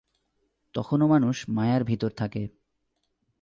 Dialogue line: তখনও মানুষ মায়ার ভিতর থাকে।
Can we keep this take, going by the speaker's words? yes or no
yes